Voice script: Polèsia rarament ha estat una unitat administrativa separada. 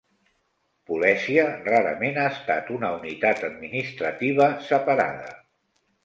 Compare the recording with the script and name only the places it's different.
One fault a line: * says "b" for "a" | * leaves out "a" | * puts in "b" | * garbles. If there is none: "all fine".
all fine